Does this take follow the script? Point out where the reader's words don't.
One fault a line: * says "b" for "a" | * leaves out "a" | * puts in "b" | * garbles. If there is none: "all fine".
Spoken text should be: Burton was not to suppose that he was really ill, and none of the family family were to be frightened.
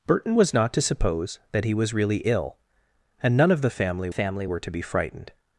all fine